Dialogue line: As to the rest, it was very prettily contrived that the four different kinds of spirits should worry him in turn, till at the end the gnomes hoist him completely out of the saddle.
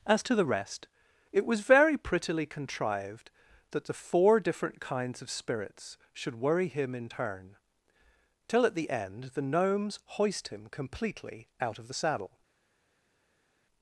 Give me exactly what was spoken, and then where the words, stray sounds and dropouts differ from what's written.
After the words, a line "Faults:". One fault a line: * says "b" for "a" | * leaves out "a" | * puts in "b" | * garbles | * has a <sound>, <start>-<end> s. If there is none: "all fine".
As to the rest, it was very prettily contrived that the four different kinds of spirits should worry him in turn, till at the end the gnomes hoist him completely out of the saddle.
Faults:
all fine